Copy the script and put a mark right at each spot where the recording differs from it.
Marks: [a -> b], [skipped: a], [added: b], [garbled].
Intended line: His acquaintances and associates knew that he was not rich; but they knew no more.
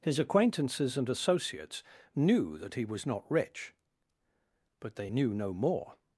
His acquaintances and associates knew that he was not rich; but they knew no more.